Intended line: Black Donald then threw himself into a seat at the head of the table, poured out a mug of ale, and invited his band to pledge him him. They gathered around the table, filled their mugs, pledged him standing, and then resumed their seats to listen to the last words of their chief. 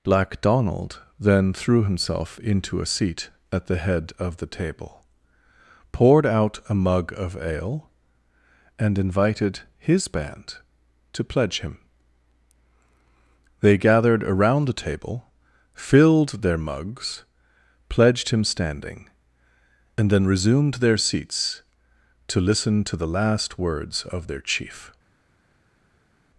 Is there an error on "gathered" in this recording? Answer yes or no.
no